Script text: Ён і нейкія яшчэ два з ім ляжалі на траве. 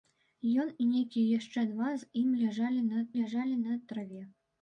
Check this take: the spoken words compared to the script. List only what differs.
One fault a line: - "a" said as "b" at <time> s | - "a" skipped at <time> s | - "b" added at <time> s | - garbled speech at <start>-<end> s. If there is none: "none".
- "ляжалі на" added at 3.2 s